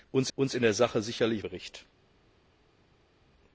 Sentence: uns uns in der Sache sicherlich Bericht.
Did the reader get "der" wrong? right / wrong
right